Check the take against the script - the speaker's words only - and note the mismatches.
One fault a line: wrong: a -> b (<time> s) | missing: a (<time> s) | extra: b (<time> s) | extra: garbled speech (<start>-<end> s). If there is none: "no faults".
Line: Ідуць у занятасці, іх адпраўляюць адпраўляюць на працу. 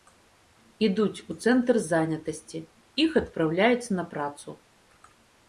extra: цэнтр (1.4 s)
missing: адпраўляюць (3.9 s)